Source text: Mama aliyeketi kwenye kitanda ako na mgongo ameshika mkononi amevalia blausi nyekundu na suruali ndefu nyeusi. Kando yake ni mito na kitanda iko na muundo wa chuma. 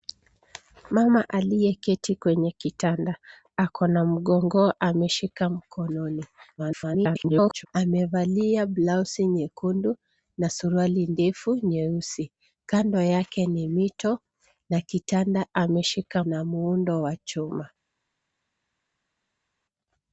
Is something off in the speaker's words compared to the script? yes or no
yes